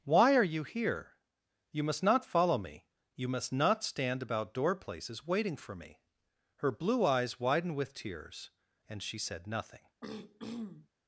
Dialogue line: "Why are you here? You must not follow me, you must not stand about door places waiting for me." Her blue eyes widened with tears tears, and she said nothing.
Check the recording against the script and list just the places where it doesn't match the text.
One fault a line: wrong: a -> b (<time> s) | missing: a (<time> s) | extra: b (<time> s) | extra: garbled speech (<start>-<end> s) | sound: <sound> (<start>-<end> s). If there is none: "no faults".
missing: tears (8.5 s)
sound: throat clearing (10.0-10.9 s)